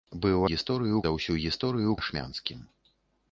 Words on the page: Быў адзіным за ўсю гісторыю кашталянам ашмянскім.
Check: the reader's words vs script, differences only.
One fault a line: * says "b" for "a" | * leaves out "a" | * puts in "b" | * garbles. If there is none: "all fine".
* says "гісторыю" for "адзіным"
* leaves out "кашталянам"